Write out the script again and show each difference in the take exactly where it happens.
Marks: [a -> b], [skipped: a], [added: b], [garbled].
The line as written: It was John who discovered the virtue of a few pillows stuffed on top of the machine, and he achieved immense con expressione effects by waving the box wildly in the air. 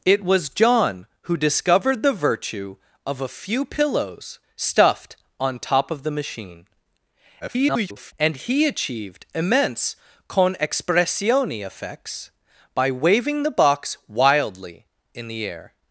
It was John who discovered the virtue of a few pillows stuffed on top of the machine, [garbled] and he achieved immense con expressione effects by waving the box wildly in the air.